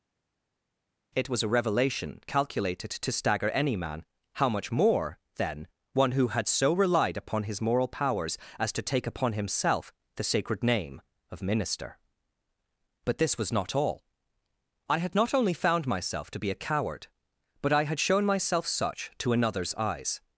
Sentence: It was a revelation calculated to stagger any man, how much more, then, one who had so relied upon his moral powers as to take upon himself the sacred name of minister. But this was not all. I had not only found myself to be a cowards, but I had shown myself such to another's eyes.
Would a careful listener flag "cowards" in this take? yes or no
yes